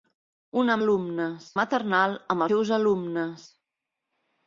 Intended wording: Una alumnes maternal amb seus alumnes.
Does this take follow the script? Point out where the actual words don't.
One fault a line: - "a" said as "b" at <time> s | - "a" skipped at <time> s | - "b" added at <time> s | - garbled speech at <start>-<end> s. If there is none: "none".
none